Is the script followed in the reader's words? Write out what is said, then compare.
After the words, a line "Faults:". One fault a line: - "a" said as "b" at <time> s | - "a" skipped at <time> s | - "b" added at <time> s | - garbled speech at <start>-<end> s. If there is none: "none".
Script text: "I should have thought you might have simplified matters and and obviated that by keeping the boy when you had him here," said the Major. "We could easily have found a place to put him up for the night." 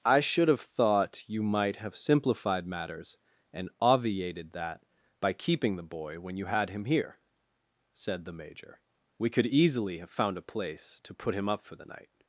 "I should have thought you might have simplified matters and obviated that by keeping the boy when you had him here," said the Major. "We could easily have found a place to put him up for the night."
Faults:
- "and" skipped at 3.7 s